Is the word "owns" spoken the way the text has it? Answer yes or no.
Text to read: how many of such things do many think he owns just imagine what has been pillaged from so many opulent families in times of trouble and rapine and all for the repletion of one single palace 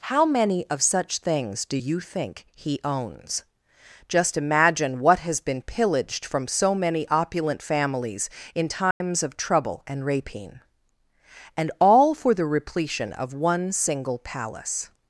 yes